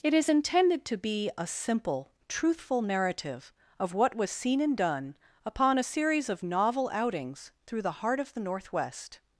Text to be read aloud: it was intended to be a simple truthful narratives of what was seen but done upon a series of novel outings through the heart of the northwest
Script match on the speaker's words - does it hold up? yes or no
no